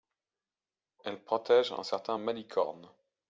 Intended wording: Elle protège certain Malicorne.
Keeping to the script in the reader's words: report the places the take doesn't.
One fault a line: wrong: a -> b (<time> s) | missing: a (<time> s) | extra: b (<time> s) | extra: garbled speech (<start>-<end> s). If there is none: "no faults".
extra: un (1.7 s)